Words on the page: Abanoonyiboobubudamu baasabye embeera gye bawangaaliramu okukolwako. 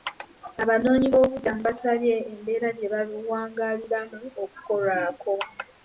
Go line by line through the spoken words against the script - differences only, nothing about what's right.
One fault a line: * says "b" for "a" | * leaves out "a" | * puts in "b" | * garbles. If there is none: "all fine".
all fine